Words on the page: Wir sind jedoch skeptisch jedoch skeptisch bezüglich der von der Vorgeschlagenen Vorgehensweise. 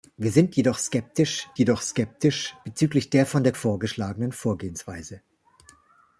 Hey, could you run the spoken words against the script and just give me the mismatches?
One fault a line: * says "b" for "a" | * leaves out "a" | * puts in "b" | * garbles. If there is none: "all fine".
all fine